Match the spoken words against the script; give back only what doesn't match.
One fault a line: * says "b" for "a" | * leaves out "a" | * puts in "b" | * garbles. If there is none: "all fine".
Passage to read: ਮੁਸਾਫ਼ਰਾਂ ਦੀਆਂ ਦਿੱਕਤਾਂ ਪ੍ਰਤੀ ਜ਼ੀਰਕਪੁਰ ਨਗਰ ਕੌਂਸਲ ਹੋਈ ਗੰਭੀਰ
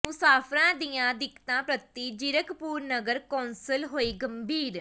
all fine